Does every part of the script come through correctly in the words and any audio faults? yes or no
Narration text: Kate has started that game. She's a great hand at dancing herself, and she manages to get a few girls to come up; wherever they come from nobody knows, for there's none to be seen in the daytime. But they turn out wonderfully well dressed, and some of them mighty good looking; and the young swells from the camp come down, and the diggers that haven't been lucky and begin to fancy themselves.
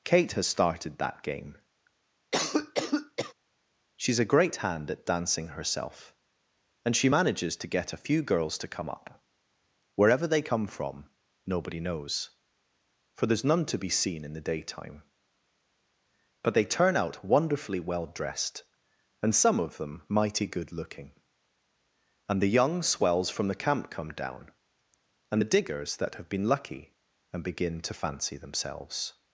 no